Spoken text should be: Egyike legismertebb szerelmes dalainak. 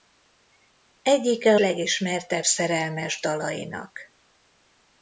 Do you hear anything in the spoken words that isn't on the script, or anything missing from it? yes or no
no